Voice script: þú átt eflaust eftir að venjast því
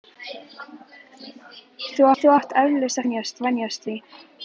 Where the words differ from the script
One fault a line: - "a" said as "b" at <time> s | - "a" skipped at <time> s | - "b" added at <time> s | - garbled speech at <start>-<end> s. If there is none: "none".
- "þú" added at 2.2 s
- "eftir" said as "venjast" at 3.0 s